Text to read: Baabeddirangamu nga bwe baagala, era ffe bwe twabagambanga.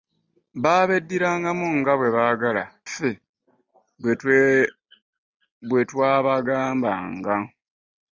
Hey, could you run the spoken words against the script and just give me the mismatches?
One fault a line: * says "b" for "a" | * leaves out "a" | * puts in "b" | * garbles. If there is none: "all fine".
* leaves out "era"